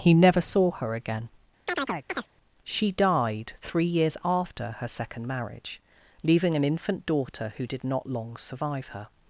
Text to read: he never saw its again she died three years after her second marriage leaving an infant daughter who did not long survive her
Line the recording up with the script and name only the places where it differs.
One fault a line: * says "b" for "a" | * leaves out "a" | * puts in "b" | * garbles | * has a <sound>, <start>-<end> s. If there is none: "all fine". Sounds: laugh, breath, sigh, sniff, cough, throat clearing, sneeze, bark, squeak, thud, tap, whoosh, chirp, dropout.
* says "her" for "its"
* has a chirp, 1.7-2.3 s